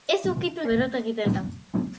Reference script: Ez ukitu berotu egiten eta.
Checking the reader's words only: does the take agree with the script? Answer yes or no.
yes